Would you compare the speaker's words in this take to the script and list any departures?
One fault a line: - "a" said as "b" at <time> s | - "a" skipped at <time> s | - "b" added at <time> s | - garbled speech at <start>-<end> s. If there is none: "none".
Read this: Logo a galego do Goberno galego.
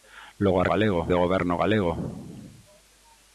none